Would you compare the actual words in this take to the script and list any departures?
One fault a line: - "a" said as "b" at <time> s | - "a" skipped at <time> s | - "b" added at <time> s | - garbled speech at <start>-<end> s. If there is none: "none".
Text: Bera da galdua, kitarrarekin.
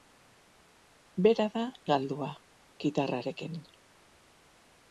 none